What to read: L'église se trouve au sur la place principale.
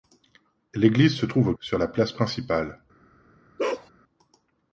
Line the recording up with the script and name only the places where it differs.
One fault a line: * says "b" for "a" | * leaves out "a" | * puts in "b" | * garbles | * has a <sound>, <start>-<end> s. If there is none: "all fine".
* has a bark, 3.6-3.9 s